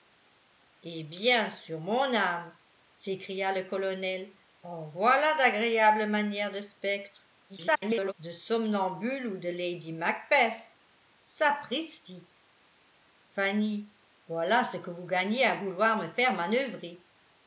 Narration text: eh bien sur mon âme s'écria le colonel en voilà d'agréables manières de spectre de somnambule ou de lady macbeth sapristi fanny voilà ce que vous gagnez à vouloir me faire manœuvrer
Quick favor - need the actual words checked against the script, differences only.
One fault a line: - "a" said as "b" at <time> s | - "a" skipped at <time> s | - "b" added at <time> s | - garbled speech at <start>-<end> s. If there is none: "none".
- garbled speech at 7.5-8.1 s